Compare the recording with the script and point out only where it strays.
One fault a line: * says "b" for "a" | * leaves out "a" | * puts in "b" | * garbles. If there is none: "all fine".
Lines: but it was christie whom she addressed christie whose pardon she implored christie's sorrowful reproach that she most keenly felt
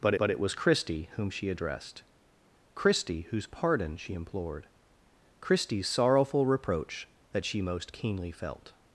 * puts in "but"